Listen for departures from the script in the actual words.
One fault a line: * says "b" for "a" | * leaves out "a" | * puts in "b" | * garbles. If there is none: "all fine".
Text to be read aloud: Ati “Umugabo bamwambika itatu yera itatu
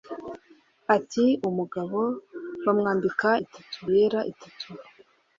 all fine